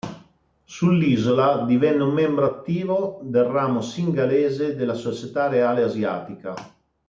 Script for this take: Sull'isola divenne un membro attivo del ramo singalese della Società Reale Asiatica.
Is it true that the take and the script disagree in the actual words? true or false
false